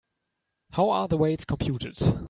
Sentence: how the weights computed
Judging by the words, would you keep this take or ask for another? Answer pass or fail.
fail